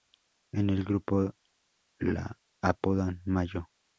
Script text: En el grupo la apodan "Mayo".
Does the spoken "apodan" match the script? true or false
true